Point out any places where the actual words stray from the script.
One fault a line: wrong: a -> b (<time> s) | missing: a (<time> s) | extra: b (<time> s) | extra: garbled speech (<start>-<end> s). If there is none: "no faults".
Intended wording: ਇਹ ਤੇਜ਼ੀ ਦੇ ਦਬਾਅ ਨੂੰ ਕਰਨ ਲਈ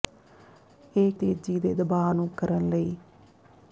no faults